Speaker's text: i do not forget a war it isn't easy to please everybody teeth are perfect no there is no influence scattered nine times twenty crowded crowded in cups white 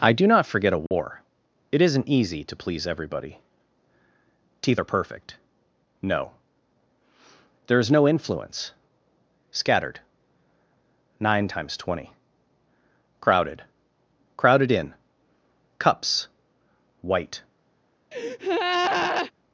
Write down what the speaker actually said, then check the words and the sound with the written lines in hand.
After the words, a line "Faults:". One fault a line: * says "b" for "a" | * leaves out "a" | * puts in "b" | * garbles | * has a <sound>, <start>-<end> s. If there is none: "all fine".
i do not forget a war it isn't easy to please everybody teeth are perfect no there is no influence scattered nine times twenty crowded crowded in cups white
Faults:
* has a dropout, 0.9-0.9 s
* has a breath, 18.1-19.3 s